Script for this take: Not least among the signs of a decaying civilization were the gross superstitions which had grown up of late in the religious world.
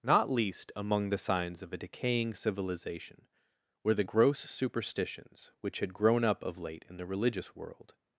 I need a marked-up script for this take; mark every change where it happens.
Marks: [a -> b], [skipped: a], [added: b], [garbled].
Not least among the signs of a decaying civilization were the gross superstitions which had grown up of late in the religious world.